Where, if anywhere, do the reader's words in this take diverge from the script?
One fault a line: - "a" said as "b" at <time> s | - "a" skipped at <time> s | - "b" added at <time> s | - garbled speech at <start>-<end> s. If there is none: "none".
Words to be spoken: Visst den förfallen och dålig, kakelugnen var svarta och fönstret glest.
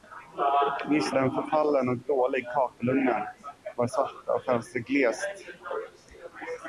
none